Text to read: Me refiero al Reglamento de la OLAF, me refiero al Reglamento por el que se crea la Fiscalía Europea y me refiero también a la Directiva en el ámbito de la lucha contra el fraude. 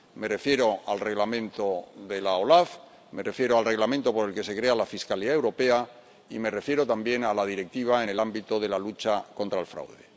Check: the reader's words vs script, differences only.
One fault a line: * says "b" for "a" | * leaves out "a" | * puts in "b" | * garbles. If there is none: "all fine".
all fine